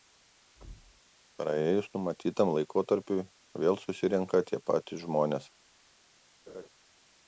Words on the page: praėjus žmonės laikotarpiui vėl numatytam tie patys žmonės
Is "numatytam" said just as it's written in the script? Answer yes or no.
no